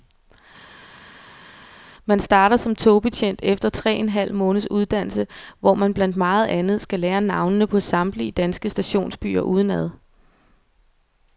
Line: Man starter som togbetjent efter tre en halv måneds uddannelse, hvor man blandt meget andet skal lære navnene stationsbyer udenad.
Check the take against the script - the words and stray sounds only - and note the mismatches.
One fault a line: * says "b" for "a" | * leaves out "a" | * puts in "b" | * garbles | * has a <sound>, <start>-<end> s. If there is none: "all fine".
* puts in "på samtlige danske"